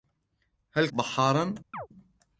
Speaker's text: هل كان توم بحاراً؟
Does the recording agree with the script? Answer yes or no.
no